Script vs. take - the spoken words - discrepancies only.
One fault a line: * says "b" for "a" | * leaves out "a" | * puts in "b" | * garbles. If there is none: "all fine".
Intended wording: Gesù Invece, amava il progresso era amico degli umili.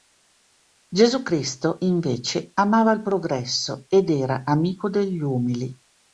* puts in "Cristo"
* puts in "ed"